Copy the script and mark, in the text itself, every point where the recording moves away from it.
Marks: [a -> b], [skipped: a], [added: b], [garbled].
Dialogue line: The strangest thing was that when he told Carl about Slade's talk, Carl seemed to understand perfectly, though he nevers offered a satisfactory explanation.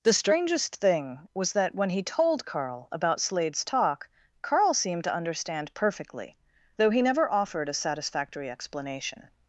The strangest thing was that when he told Carl about Slade's talk, Carl seemed to understand perfectly, though he [nevers -> never] offered a satisfactory explanation.